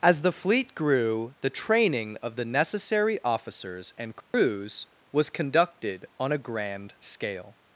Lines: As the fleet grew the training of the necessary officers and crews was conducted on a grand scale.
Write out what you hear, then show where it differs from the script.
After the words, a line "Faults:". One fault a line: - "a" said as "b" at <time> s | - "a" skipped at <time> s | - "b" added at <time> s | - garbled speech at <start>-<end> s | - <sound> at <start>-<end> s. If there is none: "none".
As the fleet grew the training of the necessary officers and crews was conducted on a grand scale.
Faults:
- dropout at 4.2-4.3 s